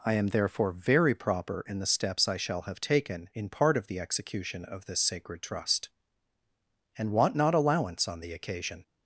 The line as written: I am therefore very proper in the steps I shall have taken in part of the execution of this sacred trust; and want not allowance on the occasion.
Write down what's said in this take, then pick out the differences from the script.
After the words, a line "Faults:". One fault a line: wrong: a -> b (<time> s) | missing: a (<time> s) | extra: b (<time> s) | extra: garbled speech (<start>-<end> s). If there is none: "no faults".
I am therefore very proper in the steps I shall have taken in part of the execution of this sacred trust; and want not allowance on the occasion.
Faults:
no faults